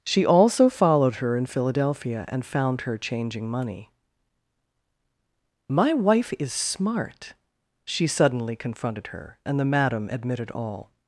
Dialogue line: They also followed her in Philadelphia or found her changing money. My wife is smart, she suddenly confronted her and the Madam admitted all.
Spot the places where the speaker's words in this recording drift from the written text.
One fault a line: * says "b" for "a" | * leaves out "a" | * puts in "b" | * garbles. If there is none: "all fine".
* says "She" for "They"
* says "and" for "or"